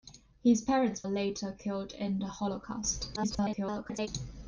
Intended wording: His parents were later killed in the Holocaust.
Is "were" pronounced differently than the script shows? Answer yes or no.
yes